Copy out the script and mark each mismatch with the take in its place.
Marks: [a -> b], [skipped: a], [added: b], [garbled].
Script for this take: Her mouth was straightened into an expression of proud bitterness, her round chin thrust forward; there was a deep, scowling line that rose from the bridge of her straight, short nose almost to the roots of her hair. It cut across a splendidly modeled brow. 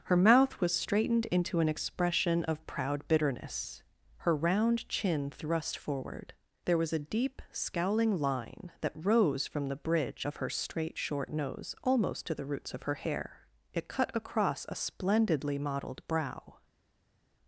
Her mouth was straightened into an expression of proud bitterness, her round chin thrust forward; there was a deep, scowling line that rose from the bridge of her straight, short nose almost to the roots of her hair. It cut across a splendidly modeled brow.